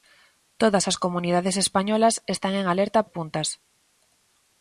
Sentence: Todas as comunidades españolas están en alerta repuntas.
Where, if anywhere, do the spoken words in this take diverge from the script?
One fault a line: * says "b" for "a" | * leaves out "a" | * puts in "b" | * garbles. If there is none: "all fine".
all fine